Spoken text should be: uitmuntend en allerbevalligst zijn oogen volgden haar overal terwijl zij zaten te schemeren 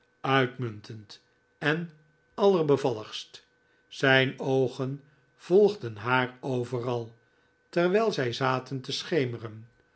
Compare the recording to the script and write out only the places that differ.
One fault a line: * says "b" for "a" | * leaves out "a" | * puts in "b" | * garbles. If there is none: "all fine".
all fine